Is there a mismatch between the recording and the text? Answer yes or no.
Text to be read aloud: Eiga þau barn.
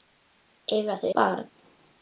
no